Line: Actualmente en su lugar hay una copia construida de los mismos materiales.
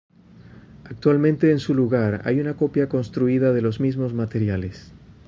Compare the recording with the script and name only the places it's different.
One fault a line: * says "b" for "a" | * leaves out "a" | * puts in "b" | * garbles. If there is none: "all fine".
all fine